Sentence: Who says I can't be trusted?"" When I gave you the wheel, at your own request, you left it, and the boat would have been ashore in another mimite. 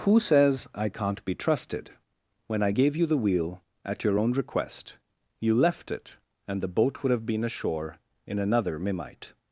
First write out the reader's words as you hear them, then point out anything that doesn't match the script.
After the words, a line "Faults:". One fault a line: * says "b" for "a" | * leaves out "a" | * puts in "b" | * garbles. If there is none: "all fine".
Who says I can't be trusted?"" When I gave you the wheel, at your own request, you left it, and the boat would have been ashore in another mimite.
Faults:
all fine